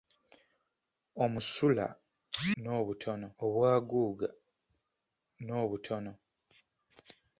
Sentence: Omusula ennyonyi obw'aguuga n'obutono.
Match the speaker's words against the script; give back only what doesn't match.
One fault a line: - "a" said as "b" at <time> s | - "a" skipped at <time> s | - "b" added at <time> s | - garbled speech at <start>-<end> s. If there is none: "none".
- "ennyonyi" said as "n'obutono" at 2.6 s